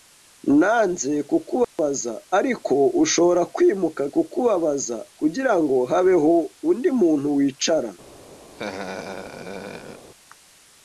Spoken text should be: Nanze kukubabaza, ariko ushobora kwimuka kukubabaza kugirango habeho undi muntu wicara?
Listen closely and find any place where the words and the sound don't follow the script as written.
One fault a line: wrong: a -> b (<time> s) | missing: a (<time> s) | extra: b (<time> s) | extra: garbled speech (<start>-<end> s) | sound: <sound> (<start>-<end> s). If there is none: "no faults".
sound: dropout (1.6-1.8 s)
sound: laugh (8.5-10.1 s)